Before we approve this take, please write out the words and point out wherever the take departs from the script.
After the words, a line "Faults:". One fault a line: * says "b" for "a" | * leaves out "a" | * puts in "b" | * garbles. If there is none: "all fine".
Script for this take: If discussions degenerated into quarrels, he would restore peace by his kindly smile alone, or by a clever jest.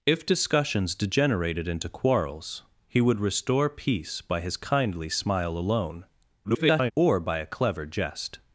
If discussions degenerated into quarrels, he would restore peace by his kindly smile alone, [garbled] or by a clever jest.
Faults:
* garbles